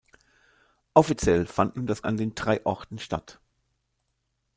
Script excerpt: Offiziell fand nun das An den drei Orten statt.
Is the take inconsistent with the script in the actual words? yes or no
no